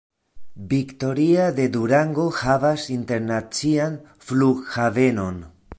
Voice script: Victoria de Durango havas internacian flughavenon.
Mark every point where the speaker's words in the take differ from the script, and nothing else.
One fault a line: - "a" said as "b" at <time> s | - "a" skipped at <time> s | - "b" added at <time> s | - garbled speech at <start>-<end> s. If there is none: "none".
none